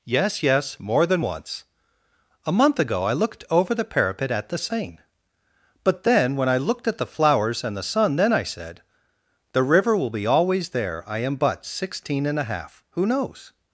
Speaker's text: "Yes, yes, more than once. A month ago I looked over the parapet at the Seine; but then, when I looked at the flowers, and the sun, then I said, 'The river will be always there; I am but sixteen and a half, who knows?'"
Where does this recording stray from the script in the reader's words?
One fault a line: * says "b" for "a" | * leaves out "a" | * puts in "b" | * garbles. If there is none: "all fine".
all fine